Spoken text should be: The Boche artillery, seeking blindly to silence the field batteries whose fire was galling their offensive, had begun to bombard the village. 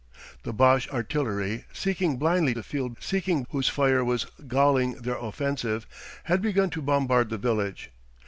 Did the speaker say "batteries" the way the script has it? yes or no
no